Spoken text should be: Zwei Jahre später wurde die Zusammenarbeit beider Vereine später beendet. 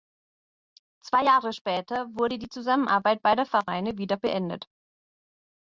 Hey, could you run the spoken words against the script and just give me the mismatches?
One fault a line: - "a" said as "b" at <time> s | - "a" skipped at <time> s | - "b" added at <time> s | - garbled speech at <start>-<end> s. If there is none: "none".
- "später" said as "wieder" at 4.0 s